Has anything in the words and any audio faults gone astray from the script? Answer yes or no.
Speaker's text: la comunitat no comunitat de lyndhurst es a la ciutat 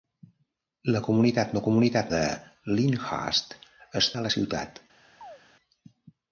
yes